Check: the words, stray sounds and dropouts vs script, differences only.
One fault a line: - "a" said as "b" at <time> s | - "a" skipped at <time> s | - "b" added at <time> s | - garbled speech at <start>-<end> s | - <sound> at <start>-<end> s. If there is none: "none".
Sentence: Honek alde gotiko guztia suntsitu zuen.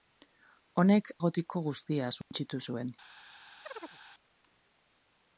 - "alde" skipped at 1.1 s
- dropout at 2.2-2.3 s
- chirp at 3.6-4.0 s